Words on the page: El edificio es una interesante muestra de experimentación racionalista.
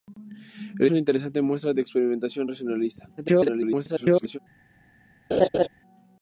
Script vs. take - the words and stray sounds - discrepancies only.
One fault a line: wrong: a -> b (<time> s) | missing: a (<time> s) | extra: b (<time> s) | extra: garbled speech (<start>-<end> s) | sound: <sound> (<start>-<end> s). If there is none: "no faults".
missing: edificio es (0.9 s)
extra: garbled speech (3.2-4.4 s)
sound: laugh (5.3-5.7 s)